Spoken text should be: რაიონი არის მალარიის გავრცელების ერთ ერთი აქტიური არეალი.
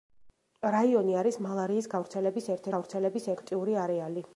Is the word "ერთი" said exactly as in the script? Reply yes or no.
no